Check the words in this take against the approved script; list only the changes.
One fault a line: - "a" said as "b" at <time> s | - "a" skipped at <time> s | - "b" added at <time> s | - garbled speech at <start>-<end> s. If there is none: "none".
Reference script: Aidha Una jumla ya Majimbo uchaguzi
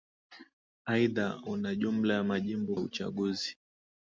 none